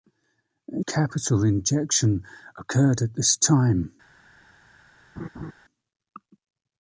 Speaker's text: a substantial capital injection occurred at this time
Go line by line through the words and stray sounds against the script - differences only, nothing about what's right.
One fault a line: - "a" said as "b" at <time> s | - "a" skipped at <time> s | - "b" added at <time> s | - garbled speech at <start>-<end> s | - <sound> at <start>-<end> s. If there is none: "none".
- "substantial" skipped at 0.8 s
- laugh at 5.2-5.5 s